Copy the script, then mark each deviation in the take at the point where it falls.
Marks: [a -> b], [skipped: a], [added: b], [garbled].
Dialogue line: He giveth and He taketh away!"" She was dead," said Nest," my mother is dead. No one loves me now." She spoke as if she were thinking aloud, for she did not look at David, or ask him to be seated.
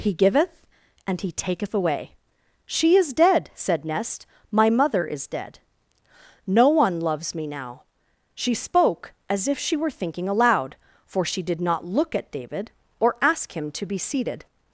He giveth and He taketh away!"" She [was -> is] dead," said Nest," my mother is dead. No one loves me now." She spoke as if she were thinking aloud, for she did not look at David, or ask him to be seated.